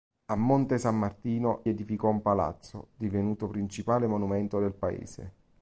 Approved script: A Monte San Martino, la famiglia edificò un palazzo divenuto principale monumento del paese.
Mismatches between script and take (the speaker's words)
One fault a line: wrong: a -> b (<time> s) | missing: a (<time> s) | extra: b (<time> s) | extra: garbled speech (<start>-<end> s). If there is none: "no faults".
missing: la famiglia (1.6 s)